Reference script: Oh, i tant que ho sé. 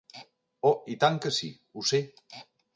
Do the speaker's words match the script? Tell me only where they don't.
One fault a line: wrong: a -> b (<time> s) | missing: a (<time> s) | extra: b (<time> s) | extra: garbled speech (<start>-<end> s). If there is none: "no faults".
extra: sí (1.4 s)